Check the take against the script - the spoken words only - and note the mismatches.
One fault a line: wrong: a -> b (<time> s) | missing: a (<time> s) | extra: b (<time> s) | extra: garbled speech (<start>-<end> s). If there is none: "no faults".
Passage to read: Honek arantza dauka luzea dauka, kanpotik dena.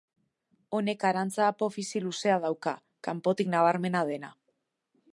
wrong: dauka -> apofisi (1.5 s)
extra: nabarmena (3.6 s)